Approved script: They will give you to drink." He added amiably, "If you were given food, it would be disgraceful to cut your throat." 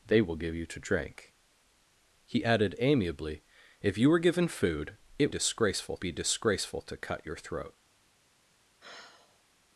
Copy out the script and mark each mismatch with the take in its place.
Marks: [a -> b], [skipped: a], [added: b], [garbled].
They will give you to drink." He added amiably, "If you were given food, it [would -> disgraceful] be disgraceful to cut your throat."